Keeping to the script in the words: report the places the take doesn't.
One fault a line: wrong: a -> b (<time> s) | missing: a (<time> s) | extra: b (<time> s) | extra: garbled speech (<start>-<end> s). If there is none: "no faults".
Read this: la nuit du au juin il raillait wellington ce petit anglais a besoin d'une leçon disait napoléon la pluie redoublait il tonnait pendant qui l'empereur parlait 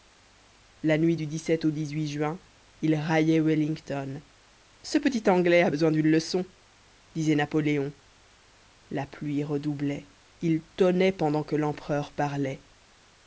wrong: qui -> que (11.4 s)